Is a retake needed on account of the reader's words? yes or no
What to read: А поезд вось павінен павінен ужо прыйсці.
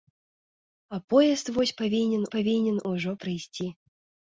no